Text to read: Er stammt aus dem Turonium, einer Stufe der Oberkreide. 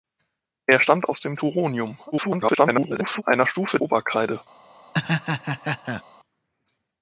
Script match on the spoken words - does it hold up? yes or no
no